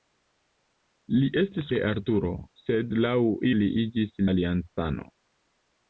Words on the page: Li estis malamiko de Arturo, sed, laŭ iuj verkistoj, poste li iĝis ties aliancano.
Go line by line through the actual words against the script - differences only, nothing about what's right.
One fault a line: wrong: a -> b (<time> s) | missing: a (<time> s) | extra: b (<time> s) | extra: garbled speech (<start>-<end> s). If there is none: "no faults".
missing: malamiko (1.7 s)
missing: iuj verkistoj poste (3.2 s)
missing: ties (4.2 s)